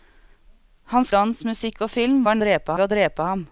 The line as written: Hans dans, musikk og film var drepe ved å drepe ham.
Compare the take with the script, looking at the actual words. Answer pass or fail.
pass